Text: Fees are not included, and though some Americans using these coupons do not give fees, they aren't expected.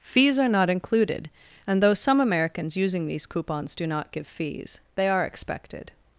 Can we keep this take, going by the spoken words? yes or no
no